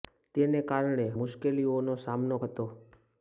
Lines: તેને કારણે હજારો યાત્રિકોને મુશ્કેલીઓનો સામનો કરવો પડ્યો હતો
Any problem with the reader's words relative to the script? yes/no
yes